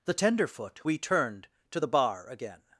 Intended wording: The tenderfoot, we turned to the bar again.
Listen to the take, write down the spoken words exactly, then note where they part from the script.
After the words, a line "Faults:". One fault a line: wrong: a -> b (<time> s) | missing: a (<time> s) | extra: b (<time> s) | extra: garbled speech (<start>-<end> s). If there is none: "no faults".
The tenderfoot, we turned to the bar again.
Faults:
no faults